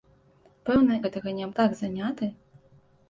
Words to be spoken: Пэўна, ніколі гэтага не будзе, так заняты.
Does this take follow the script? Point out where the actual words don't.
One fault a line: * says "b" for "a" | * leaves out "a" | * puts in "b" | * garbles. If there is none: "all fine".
* leaves out "ніколі"
* leaves out "будзе"